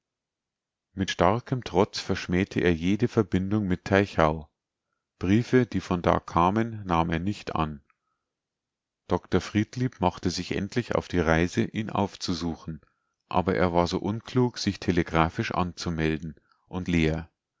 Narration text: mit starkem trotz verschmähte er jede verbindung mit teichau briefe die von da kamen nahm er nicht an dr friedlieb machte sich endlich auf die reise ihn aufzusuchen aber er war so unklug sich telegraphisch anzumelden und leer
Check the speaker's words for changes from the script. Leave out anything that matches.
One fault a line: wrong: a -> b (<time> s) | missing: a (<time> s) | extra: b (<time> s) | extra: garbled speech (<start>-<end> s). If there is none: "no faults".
no faults